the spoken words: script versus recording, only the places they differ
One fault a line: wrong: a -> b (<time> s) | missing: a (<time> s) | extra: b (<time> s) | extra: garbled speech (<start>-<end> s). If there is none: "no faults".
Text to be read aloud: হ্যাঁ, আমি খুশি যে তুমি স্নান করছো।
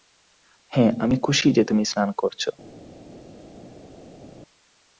no faults